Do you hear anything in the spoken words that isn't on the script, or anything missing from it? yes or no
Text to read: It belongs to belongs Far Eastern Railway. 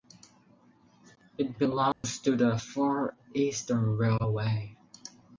yes